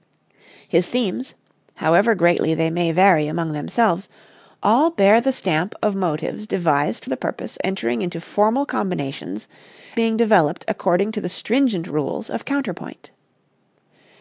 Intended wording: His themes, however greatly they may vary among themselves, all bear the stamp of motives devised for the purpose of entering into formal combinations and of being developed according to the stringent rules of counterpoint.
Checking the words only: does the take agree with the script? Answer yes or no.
no